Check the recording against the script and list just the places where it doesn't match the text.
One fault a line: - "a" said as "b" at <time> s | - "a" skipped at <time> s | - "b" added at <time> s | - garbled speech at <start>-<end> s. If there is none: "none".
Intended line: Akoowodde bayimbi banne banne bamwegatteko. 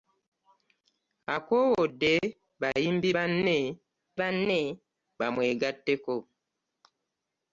none